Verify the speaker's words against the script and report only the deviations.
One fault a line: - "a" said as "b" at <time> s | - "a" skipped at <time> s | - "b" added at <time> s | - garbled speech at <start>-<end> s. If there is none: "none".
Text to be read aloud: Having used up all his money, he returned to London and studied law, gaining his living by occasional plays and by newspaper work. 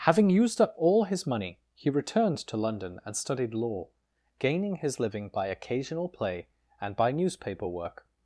- "plays" said as "play" at 6.1 s